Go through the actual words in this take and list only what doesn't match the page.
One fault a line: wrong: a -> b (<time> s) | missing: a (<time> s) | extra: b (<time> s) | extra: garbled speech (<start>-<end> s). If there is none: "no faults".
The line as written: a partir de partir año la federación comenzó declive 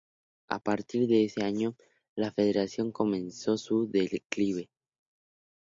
wrong: partir -> ese (1.3 s)
extra: su (3.6 s)